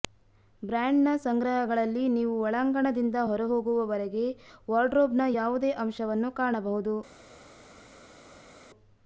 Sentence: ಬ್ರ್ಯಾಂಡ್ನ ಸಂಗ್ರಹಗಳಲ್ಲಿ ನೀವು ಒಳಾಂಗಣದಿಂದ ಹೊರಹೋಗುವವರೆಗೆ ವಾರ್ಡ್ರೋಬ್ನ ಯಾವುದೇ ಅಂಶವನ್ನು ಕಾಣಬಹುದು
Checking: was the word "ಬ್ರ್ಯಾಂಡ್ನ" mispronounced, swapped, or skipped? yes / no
no